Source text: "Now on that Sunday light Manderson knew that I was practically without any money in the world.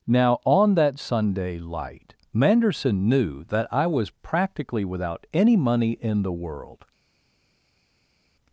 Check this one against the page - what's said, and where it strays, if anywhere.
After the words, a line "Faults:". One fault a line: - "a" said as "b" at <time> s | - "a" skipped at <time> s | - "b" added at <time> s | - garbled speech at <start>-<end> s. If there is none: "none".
"Now on that Sunday light Manderson knew that I was practically without any money in the world.
Faults:
none